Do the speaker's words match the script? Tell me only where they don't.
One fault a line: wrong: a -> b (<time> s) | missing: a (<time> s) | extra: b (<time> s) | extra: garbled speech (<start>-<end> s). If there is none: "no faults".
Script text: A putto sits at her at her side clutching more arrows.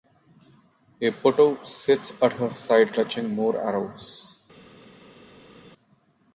missing: at her (2.5 s)